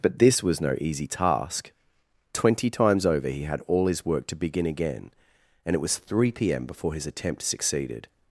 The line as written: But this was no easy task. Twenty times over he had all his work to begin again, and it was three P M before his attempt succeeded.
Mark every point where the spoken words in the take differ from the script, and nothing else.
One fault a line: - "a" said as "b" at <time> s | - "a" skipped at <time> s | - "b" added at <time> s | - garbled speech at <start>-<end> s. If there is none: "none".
none